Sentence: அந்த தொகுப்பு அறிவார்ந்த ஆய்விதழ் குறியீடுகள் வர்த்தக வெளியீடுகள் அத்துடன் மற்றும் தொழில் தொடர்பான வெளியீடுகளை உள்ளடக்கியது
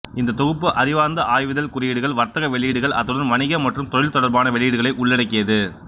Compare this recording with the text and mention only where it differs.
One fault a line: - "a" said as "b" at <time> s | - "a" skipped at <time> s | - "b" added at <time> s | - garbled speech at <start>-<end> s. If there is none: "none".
- "அந்த" said as "இந்த" at 0.2 s
- "வணிக" added at 3.3 s